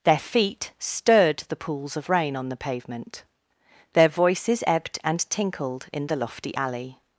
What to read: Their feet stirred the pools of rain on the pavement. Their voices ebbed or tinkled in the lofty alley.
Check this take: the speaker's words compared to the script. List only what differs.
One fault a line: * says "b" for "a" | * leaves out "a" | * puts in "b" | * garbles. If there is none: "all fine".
* says "and" for "or"